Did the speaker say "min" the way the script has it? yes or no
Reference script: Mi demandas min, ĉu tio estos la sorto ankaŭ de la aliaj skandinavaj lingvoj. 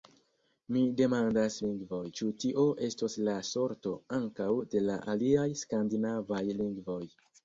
no